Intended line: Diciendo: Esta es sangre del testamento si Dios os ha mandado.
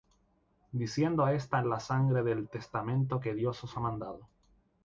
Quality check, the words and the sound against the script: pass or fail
fail